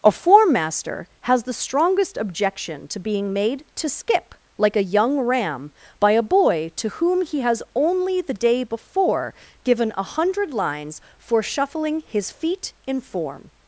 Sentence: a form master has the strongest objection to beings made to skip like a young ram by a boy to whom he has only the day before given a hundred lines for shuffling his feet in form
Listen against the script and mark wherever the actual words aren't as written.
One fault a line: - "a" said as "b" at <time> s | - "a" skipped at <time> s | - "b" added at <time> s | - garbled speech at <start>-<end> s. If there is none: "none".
- "beings" said as "being" at 3.0 s